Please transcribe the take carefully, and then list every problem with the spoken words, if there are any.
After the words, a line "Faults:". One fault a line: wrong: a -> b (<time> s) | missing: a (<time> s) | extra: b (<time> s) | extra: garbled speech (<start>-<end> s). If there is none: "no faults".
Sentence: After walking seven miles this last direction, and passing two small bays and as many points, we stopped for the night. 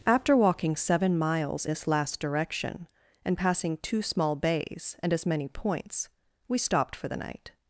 After walking seven miles this last direction, and passing two small bays and as many points, we stopped for the night.
Faults:
no faults